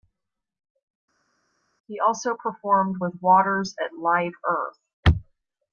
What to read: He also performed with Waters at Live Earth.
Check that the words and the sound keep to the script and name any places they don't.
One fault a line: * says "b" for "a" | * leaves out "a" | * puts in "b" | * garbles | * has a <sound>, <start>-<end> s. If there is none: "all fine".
all fine